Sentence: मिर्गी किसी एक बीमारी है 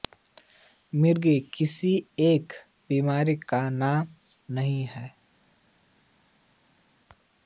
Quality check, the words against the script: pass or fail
fail